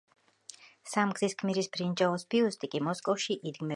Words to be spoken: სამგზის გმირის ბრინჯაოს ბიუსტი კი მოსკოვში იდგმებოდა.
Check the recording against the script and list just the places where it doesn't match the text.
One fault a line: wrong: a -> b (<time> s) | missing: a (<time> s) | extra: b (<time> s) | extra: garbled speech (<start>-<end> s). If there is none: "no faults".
no faults